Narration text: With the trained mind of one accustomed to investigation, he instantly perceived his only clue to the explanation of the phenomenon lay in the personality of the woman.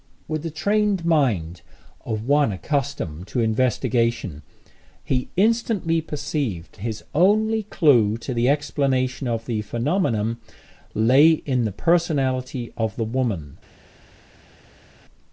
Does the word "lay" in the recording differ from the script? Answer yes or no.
no